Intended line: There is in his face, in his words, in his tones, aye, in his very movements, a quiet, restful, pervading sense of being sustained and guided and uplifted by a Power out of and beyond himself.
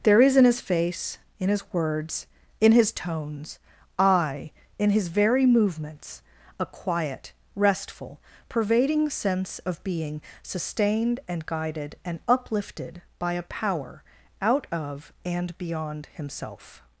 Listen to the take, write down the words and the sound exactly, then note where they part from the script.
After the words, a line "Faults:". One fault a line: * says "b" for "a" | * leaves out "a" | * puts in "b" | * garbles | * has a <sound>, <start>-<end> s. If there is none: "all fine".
There is in his face, in his words, in his tones, aye, in his very movements, a quiet, restful, pervading sense of being sustained and guided and uplifted by a Power out of and beyond himself.
Faults:
all fine